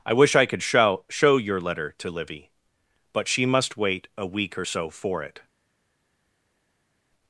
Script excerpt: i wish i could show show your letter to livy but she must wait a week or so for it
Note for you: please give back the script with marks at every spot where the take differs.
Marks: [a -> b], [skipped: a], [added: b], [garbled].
i wish i could show show your letter to livy but she must wait a week or so for it